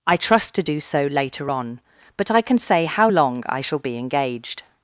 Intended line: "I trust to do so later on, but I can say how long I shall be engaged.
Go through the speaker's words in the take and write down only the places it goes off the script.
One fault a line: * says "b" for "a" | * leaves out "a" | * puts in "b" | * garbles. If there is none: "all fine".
all fine